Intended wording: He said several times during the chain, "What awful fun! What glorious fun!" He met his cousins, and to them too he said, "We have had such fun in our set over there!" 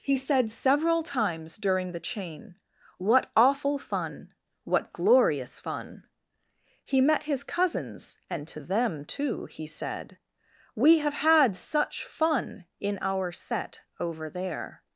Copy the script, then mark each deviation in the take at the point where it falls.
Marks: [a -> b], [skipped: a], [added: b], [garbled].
He said several times during the chain, "What awful fun! What glorious fun!" He met his cousins, and to them too he said, "We have had such fun in our set over there!"